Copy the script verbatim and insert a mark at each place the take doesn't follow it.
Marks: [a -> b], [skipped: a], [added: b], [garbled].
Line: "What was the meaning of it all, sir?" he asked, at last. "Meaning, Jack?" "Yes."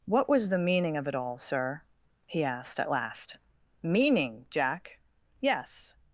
"What was the meaning of it all, sir?" he asked, at last. "Meaning, Jack?" "Yes."